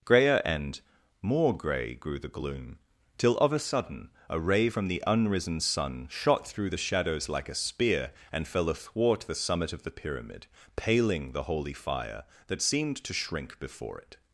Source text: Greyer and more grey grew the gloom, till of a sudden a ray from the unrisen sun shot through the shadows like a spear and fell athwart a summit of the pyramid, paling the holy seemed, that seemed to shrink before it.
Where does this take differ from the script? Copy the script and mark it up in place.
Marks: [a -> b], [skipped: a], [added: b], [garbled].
Greyer and more grey grew the gloom, till of a sudden a ray from the unrisen sun shot through the shadows like a spear and fell athwart [a -> the] summit of the pyramid, paling the holy [seemed, -> fire] that seemed to shrink before it.